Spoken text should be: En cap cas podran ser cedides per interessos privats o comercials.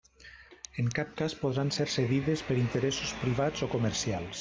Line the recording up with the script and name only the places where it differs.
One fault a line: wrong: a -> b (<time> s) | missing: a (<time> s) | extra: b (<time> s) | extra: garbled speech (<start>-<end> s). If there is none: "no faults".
no faults